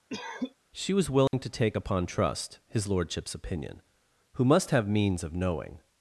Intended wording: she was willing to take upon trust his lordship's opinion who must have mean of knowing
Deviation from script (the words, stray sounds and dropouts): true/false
true